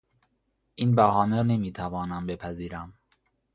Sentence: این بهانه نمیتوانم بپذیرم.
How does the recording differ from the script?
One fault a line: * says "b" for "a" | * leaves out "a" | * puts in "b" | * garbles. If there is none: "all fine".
all fine